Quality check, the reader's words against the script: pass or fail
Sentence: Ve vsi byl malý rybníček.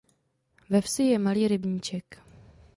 fail